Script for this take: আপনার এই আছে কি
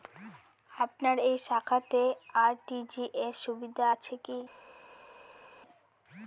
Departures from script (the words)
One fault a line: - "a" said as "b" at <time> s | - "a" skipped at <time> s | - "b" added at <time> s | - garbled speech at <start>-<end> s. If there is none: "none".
- "শাখাতে আর.টি.জি.এস সুবিধা" added at 1.5 s